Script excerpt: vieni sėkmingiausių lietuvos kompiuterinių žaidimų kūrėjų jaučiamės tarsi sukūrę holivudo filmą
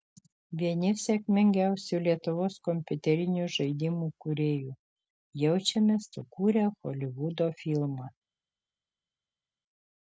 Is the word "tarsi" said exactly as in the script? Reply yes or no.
no